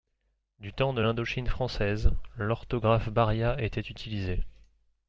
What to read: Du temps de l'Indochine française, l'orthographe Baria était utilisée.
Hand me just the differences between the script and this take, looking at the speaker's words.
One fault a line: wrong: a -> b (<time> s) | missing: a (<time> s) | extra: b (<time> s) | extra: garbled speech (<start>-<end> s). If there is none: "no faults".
no faults